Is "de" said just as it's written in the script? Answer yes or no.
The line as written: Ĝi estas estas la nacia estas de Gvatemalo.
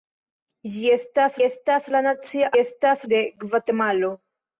yes